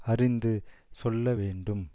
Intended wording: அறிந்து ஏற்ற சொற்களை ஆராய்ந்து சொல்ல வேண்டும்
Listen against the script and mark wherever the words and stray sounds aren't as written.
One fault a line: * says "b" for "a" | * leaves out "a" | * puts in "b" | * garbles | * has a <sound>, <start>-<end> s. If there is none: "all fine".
* leaves out "ஏற்ற சொற்களை ஆராய்ந்து"